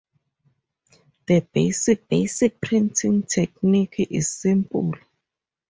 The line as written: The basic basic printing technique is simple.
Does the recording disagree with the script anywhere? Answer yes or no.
no